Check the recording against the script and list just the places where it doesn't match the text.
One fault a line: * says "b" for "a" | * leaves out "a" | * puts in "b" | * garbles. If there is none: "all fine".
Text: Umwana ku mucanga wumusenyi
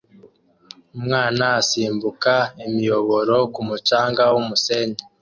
* puts in "asimbuka imiyoboro"